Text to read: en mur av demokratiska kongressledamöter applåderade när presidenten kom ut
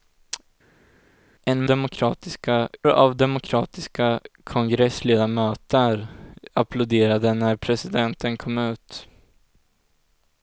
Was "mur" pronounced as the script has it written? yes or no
no